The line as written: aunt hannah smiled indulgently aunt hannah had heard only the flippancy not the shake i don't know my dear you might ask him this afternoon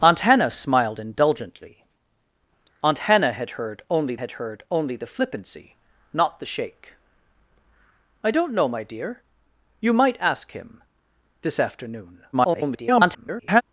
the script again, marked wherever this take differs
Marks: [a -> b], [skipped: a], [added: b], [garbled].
aunt hannah smiled indulgently aunt hannah had heard only [added: had heard only] the flippancy not the shake i don't know my dear you might ask him this afternoon [garbled]